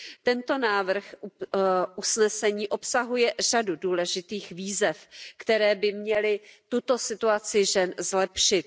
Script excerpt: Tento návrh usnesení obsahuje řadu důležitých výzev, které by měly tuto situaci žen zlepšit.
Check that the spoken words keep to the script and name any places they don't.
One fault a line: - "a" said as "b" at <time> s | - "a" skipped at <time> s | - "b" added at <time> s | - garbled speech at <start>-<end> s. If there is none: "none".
none